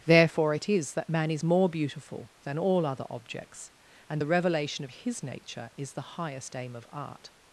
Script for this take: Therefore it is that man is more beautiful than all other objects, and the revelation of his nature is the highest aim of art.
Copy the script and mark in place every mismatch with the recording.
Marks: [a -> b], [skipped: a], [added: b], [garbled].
Therefore it is that man is more beautiful than all other objects, and the revelation of his nature is the highest aim of art.